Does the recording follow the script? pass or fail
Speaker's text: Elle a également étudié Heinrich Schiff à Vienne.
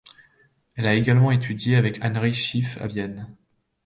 fail